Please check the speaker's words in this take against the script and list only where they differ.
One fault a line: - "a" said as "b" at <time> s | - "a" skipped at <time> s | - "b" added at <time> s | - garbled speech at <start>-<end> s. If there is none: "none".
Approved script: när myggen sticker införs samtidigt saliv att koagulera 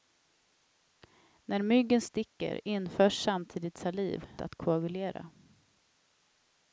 none